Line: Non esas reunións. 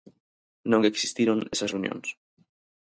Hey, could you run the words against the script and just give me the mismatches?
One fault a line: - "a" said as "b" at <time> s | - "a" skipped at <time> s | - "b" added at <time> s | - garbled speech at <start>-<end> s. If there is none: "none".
- "existiron" added at 0.9 s